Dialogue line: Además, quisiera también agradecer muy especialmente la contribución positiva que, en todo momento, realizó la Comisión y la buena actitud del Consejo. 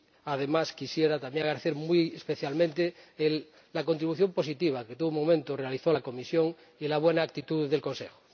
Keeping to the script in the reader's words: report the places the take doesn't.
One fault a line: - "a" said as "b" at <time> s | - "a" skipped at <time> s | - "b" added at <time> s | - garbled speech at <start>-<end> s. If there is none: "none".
none